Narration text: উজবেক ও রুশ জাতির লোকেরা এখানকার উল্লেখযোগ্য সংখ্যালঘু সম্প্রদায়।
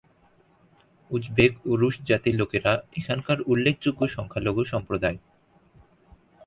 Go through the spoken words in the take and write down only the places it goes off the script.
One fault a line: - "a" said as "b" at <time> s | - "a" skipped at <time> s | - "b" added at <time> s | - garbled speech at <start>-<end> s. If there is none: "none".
none